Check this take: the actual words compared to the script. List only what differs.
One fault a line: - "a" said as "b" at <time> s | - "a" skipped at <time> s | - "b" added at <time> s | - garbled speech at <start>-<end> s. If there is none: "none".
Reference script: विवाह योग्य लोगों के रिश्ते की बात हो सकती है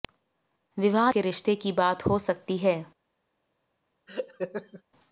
- "योग्य लोगों" skipped at 1.1 s